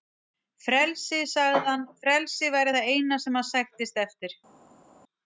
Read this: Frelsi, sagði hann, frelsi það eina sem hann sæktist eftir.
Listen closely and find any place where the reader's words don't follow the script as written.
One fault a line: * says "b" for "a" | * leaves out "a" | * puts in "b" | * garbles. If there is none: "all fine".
* puts in "væri"